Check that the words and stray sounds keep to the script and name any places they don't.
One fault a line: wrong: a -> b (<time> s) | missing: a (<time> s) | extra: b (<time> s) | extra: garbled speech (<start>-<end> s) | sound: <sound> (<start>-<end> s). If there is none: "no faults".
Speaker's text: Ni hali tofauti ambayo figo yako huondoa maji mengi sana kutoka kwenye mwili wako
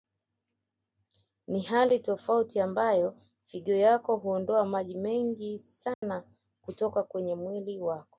sound: dropout (5.9-6.0 s)